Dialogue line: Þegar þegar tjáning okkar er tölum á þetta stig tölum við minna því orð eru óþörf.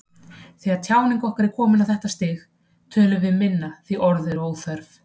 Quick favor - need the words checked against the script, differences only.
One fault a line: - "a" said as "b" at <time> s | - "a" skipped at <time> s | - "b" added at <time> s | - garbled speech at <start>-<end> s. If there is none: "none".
- "þegar" skipped at 0.8 s
- "tölum" said as "komin" at 1.6 s